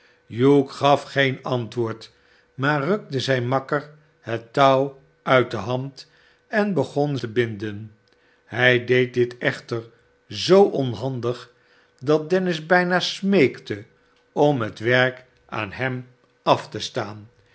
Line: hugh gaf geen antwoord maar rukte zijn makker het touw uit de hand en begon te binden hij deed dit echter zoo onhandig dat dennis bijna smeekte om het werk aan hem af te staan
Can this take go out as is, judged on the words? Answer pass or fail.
pass